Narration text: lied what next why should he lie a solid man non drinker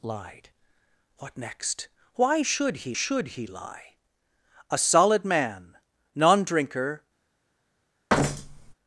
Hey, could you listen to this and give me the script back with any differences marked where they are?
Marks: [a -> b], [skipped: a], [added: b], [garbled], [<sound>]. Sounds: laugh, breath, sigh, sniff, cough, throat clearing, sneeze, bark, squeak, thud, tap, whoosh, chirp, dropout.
lied what next why should he [added: should he] lie a solid man non drinker [thud]